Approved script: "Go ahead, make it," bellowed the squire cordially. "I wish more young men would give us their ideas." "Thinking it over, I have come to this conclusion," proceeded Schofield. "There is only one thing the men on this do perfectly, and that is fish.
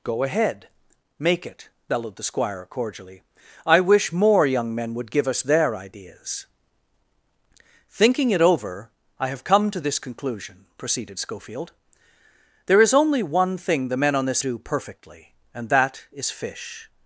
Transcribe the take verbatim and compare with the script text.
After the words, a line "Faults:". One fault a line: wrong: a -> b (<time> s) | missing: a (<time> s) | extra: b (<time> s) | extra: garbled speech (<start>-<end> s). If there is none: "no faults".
"Go ahead, make it," bellowed the squire cordially. "I wish more young men would give us their ideas." "Thinking it over, I have come to this conclusion," proceeded Schofield. "There is only one thing the men on this do perfectly, and that is fish.
Faults:
no faults